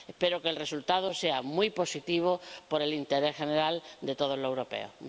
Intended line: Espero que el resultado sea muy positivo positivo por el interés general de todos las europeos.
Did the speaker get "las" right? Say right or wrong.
wrong